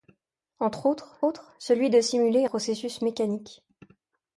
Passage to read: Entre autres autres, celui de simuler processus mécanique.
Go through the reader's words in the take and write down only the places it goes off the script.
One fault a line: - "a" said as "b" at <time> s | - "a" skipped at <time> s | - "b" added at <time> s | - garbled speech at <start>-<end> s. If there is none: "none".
none